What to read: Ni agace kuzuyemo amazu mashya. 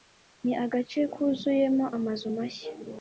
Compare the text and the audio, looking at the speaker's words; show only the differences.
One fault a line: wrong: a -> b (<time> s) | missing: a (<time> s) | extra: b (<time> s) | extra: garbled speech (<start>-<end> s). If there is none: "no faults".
no faults